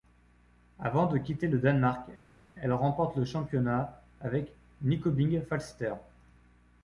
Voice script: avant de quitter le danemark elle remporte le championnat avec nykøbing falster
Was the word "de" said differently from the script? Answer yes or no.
no